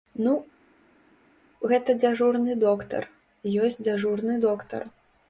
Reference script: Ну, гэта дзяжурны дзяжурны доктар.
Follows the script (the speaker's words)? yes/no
no